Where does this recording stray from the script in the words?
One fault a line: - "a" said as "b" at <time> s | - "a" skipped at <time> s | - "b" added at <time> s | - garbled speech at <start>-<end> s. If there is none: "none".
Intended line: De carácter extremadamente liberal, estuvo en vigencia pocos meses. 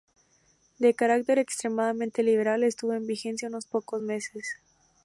- "unos" added at 3.5 s